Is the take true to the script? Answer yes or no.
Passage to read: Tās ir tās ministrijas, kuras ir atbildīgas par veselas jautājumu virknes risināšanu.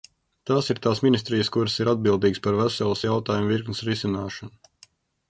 yes